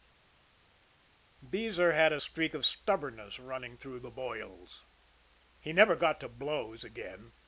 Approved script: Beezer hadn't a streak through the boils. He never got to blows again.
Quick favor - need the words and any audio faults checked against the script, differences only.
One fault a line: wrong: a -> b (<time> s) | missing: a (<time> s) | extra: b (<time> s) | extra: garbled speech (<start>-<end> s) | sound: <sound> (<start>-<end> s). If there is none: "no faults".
wrong: hadn't -> had (1.9 s)
extra: of stubbornness running (2.5 s)